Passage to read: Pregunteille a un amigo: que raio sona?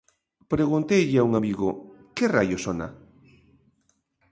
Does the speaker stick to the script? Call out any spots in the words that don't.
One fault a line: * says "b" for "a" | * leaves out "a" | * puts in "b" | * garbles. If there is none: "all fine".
all fine